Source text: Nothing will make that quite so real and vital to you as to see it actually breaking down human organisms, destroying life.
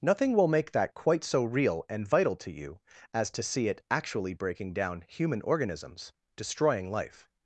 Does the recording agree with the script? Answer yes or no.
yes